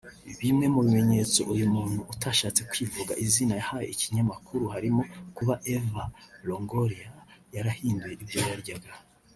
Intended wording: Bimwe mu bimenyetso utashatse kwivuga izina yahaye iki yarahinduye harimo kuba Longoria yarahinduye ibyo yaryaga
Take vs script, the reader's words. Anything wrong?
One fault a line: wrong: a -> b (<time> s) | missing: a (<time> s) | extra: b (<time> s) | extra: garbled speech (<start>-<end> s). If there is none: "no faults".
extra: uyu muntu (1.5 s)
wrong: yarahinduye -> kinyamakuru (4.1 s)
extra: Eva (5.7 s)